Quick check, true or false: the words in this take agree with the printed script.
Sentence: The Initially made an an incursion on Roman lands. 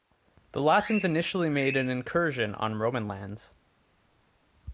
false